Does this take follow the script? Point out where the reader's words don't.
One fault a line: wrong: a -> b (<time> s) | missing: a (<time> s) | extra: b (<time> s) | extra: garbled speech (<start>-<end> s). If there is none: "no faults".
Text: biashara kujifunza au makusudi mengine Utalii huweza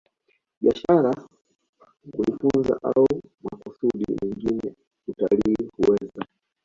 no faults